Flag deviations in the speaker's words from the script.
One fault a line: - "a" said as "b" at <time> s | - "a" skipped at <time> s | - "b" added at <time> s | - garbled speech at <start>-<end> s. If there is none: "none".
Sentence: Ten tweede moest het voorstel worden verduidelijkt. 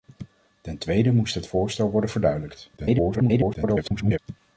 - garbled speech at 2.8-4.2 s